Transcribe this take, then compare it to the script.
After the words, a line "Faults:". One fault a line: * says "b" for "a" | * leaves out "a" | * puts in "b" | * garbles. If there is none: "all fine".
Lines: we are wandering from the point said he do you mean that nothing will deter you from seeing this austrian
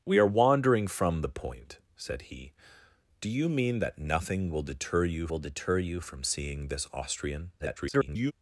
we are wandering from the point said he do you mean that nothing will deter you will deter you from seeing this austrian [garbled]
Faults:
* puts in "will deter you"
* garbles